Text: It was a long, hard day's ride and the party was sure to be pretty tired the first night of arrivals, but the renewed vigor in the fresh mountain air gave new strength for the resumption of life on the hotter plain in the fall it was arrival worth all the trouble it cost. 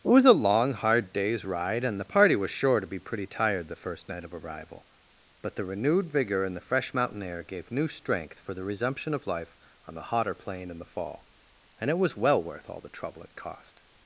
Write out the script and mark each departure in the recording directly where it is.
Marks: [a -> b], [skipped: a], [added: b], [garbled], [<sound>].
It was a long, hard day's ride and the party was sure to be pretty tired the first night of [arrivals, -> arrival] but the renewed vigor in the fresh mountain air gave new strength for the resumption of life on the hotter plain in the fall [added: and] it was [arrival -> well] worth all the trouble it cost.